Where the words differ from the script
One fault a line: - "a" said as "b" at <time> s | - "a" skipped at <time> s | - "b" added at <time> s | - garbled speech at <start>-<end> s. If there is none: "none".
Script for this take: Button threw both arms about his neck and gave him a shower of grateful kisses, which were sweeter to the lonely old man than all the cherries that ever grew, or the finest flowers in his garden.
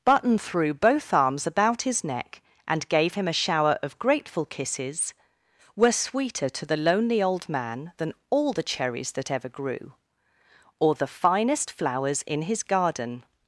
- "which" skipped at 5.1 s